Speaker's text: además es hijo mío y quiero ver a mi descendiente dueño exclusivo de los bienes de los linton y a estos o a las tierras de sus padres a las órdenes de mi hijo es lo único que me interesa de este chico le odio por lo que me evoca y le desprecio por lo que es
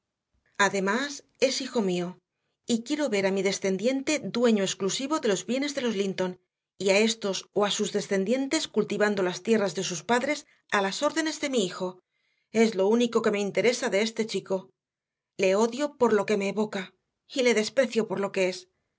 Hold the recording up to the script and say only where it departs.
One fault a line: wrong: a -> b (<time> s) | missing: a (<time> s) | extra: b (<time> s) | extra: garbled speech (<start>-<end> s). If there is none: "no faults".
extra: sus descendientes cultivando (7.7 s)